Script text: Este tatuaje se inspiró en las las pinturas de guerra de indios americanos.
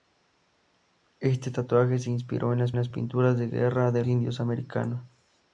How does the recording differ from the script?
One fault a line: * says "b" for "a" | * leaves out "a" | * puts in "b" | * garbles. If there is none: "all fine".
all fine